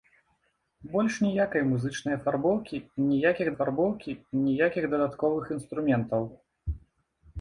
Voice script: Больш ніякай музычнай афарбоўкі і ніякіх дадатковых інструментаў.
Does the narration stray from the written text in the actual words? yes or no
yes